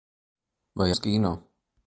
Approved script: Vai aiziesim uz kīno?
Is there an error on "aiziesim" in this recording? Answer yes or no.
yes